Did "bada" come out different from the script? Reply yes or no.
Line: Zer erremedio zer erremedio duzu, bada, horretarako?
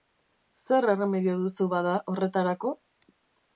no